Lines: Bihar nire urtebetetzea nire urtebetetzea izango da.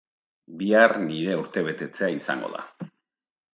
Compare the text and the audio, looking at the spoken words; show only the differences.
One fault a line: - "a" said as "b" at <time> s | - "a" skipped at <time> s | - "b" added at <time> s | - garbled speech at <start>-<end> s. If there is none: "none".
- "nire urtebetetzea" skipped at 2.1 s